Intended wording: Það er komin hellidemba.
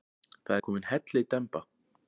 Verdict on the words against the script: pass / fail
pass